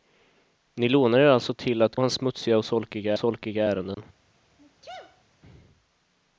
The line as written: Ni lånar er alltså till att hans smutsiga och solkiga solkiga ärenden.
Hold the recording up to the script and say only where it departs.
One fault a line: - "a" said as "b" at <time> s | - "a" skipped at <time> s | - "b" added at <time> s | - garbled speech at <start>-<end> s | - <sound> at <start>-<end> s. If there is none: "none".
- dropout at 3.9-4.0 s
- sneeze at 4.6-5.2 s